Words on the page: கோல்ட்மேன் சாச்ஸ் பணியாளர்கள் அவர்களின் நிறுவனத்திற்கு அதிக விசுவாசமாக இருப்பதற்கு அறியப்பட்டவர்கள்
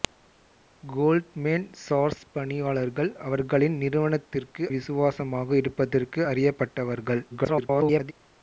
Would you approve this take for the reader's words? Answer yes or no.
no